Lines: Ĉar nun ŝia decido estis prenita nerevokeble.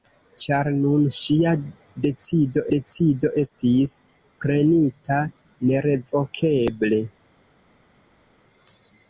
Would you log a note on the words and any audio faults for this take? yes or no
yes